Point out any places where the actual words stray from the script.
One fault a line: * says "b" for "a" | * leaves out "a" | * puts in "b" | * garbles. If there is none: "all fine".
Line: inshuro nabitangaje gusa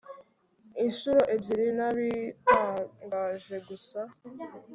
* puts in "ebyiri"